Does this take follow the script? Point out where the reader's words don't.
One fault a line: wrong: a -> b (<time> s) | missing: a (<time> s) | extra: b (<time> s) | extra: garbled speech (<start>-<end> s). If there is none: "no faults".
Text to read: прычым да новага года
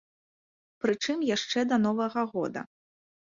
extra: яшчэ (1.4 s)